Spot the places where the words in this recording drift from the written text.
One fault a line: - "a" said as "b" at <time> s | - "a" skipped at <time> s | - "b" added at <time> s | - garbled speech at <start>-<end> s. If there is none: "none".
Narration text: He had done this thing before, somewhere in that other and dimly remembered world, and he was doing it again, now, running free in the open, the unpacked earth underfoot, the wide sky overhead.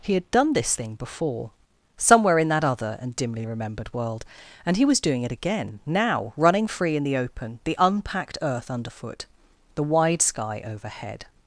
none